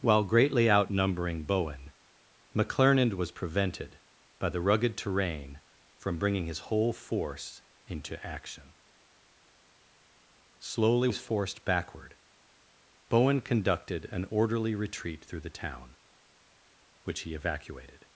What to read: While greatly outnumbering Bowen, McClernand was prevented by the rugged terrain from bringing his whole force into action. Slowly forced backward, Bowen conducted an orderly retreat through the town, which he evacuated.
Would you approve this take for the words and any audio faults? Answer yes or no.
yes